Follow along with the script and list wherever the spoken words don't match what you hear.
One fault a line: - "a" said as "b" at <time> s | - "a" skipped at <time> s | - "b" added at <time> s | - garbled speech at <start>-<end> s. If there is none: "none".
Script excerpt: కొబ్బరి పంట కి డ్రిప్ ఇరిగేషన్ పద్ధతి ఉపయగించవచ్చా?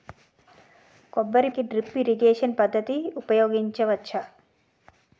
- "పంట" skipped at 1.5 s